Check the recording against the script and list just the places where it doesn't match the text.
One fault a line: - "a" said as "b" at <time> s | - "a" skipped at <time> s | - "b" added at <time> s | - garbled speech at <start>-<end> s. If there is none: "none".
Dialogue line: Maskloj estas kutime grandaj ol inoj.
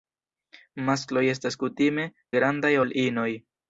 none